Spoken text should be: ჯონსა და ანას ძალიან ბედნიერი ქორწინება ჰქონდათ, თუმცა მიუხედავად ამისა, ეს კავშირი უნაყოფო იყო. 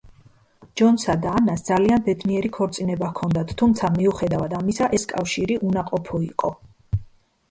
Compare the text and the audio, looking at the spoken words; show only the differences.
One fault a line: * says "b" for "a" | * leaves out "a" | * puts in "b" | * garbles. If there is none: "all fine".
all fine